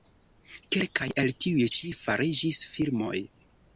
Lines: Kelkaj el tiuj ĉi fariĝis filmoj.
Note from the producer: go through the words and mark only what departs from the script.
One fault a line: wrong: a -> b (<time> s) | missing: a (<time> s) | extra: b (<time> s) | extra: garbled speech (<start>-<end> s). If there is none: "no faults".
no faults